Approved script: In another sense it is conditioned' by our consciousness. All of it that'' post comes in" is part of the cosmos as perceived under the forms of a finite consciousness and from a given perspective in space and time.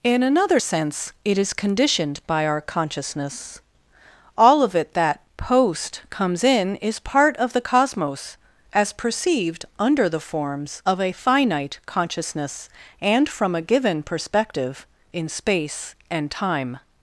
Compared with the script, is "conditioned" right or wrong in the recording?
right